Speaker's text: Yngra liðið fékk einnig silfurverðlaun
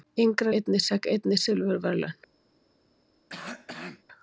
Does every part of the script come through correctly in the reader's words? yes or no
no